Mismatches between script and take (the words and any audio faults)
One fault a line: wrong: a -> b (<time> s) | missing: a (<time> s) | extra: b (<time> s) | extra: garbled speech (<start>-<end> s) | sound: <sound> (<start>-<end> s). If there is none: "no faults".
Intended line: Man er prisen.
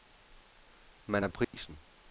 sound: dropout (1.4-1.5 s)